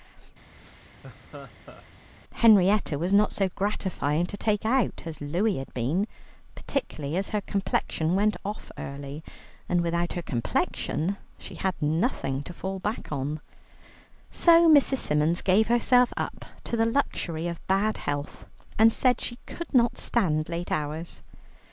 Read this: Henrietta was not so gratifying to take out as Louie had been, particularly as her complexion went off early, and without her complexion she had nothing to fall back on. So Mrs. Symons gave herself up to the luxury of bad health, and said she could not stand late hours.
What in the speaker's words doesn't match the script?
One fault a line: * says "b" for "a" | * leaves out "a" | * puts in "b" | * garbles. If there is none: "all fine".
all fine